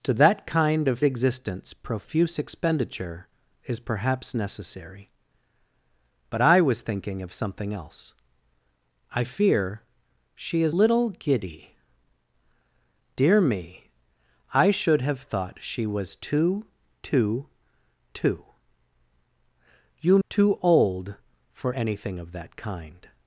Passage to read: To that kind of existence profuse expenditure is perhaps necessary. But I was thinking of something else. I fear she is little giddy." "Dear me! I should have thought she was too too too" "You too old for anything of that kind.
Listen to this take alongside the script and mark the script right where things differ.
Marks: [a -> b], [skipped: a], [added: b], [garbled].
To that kind of existence profuse expenditure is perhaps necessary. But I was thinking of something else. I fear she is little giddy." "Dear me! I should have thought she was too too too" "You too old for anything of that kind.